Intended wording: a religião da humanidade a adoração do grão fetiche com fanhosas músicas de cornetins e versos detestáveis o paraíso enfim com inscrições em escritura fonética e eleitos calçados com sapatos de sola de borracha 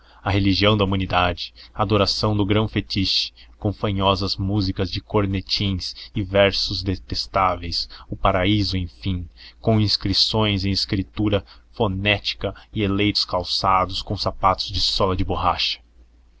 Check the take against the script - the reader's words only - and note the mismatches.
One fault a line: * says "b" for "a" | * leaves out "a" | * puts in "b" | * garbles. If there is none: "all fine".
all fine